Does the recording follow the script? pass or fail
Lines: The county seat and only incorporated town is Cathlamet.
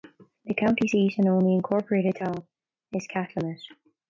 pass